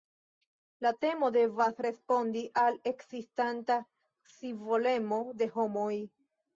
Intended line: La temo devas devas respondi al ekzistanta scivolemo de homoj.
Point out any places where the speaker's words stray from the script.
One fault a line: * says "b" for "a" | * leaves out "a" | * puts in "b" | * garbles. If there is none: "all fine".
* leaves out "devas"